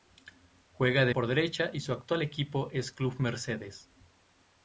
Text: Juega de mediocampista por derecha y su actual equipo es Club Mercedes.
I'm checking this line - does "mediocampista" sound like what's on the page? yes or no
no